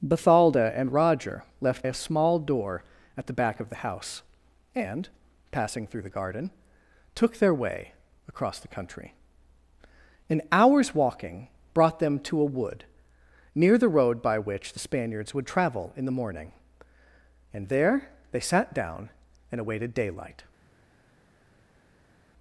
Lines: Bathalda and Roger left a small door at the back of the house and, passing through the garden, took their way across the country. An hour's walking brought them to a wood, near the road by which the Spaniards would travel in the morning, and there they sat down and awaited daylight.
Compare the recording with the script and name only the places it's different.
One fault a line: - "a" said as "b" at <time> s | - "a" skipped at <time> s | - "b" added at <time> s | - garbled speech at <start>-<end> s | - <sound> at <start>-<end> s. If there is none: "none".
none